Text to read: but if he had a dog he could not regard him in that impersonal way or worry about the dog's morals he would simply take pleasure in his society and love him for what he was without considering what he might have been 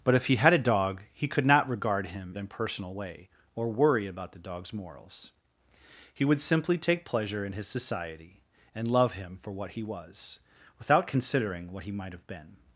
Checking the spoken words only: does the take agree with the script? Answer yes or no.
no